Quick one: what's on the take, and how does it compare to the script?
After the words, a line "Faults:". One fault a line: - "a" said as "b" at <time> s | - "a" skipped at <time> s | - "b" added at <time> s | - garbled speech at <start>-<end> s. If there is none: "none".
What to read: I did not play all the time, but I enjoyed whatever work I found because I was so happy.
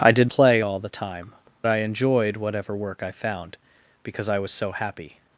I did play all the time, I enjoyed whatever work I found because I was so happy.
Faults:
- "not" skipped at 0.3 s
- "but" skipped at 1.3 s